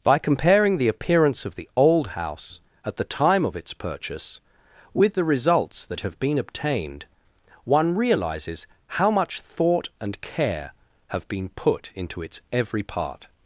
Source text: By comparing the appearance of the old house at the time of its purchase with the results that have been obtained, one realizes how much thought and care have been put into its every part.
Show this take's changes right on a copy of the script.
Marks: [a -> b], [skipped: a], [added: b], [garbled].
By comparing the appearance of the old house at the time of its purchase with the results that have been obtained, one realizes how much thought and care have been put into its every part.